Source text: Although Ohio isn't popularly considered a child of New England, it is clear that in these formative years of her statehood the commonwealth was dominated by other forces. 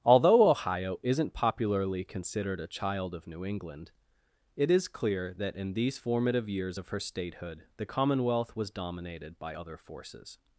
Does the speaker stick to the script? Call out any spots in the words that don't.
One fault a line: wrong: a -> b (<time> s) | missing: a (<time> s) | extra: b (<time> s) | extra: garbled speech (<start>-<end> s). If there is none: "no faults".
no faults